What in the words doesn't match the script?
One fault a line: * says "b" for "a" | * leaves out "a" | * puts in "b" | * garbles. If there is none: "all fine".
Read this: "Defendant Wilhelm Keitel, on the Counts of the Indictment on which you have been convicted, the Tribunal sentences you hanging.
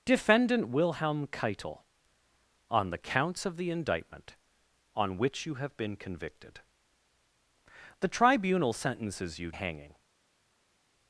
all fine